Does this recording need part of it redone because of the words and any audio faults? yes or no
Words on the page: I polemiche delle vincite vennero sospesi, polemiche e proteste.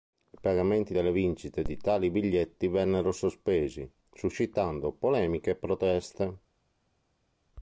yes